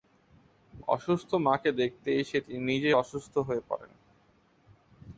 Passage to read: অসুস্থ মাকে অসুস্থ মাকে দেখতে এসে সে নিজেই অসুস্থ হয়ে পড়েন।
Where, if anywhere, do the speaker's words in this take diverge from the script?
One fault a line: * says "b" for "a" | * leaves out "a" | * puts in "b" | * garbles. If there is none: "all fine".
* leaves out "অসুস্থ মাকে"
* says "তিনি" for "সে"